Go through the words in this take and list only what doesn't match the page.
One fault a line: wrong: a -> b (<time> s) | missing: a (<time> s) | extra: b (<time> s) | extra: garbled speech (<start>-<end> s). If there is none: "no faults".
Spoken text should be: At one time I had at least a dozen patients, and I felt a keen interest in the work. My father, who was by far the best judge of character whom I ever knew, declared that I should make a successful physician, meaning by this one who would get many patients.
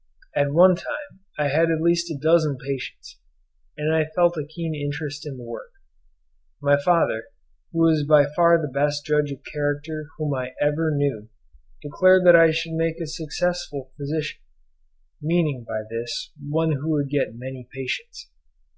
no faults